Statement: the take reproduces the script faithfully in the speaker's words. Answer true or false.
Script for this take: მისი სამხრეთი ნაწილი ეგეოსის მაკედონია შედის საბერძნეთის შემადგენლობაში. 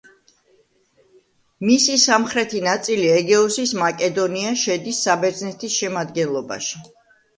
true